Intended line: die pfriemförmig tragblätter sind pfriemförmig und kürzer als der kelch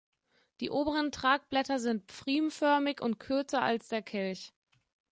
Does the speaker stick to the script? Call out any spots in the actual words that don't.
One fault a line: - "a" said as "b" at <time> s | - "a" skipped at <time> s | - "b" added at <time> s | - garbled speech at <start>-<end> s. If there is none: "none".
- "pfriemförmig" said as "oberen" at 0.7 s